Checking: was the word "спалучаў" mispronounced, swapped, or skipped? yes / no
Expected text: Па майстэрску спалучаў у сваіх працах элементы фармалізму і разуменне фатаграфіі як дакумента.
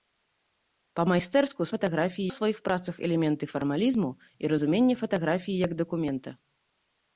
yes